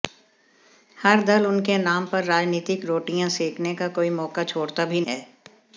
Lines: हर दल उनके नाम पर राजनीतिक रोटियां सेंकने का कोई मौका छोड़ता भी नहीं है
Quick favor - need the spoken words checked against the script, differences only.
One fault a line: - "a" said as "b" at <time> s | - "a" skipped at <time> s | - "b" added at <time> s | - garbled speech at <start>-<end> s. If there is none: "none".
- "नहीं" skipped at 5.0 s